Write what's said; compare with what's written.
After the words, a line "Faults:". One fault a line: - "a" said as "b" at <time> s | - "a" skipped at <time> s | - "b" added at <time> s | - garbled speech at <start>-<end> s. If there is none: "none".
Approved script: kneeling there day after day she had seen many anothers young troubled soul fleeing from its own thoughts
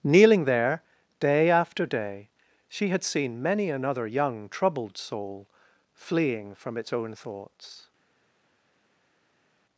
kneeling there day after day she had seen many another young troubled soul fleeing from its own thoughts
Faults:
- "anothers" said as "another" at 3.7 s